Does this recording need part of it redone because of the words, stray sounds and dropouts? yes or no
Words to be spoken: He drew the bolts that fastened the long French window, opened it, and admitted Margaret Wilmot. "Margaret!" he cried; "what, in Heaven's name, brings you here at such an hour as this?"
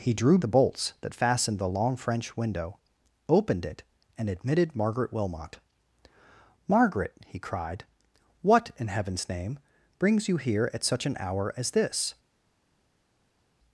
no